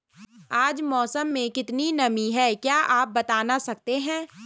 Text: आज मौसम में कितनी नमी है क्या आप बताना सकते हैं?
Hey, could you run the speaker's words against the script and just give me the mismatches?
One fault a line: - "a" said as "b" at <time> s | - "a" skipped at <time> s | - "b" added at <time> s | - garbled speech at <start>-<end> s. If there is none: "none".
none